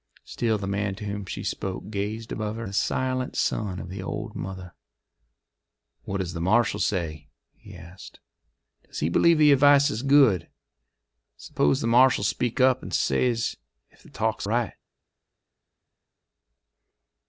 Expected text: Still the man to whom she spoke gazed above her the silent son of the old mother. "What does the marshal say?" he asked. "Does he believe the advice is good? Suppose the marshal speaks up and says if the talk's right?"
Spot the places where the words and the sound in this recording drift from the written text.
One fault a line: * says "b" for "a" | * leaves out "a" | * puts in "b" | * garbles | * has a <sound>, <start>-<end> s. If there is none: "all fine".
all fine